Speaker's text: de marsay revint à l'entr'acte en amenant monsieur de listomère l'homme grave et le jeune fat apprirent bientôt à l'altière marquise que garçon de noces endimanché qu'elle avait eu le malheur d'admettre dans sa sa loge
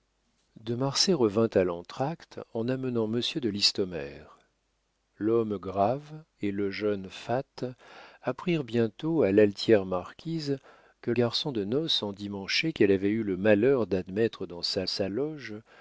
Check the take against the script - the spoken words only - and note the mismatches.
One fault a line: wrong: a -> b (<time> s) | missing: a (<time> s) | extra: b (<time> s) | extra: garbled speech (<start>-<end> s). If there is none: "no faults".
no faults